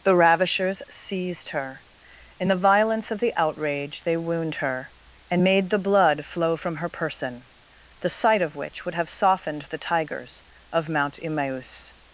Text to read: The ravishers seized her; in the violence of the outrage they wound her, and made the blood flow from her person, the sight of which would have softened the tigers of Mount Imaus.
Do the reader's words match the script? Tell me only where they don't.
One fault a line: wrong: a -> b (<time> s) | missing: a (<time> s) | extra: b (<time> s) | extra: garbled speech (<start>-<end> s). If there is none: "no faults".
no faults